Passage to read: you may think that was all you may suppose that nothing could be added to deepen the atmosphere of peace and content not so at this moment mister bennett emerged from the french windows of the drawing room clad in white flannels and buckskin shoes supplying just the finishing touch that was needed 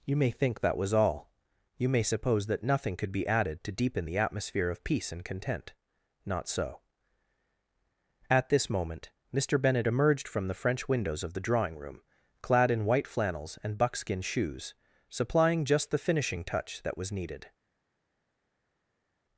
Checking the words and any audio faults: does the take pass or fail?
pass